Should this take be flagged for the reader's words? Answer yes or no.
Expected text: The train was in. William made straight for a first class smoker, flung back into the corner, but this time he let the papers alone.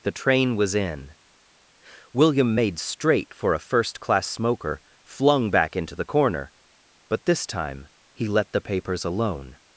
no